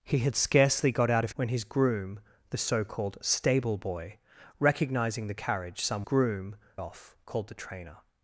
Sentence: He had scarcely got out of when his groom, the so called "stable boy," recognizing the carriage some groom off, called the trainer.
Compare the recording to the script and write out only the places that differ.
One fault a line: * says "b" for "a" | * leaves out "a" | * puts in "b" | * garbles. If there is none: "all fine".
all fine